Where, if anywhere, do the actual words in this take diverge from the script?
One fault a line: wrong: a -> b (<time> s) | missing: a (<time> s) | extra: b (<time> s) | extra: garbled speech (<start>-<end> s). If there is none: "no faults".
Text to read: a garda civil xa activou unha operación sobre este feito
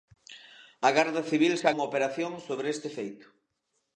missing: activou (1.7 s)